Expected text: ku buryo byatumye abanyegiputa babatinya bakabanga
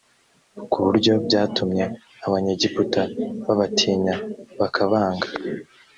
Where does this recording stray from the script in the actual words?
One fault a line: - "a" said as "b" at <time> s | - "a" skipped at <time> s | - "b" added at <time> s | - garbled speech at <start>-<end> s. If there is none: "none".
none